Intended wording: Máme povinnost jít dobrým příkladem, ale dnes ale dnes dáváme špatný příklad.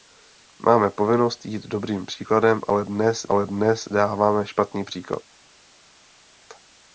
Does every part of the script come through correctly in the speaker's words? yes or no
yes